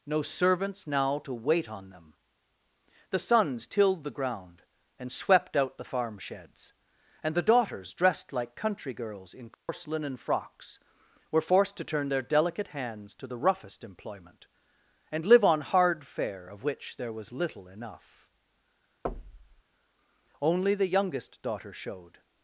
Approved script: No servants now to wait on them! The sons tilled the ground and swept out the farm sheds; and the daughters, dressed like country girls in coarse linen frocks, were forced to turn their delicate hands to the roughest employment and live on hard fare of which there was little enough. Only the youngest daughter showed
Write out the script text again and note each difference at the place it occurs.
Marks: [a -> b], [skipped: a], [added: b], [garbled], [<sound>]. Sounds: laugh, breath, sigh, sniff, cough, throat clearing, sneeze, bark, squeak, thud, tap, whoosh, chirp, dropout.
No servants now to wait on them! The sons tilled the ground and swept out the farm sheds; and the daughters, dressed like country girls in coarse [dropout] linen frocks, were forced to turn their delicate hands to the roughest employment and live on hard fare of which there was little enough. [thud] Only the youngest daughter showed